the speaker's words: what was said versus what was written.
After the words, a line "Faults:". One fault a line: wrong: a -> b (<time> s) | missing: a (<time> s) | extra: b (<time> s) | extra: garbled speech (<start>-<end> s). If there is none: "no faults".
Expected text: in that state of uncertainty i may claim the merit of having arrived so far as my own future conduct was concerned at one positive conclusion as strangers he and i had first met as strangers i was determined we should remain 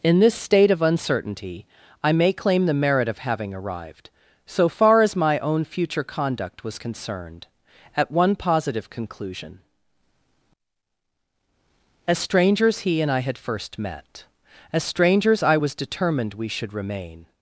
in this state of uncertainty i may claim the merit of having arrived so far as my own future conduct was concerned at one positive conclusion as strangers he and i had first met as strangers i was determined we should remain
Faults:
wrong: that -> this (0.2 s)